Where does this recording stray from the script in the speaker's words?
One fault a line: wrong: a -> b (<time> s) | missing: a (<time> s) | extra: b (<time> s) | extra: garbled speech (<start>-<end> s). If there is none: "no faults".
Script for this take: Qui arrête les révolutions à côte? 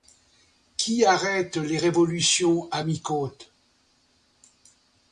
extra: mi (2.8 s)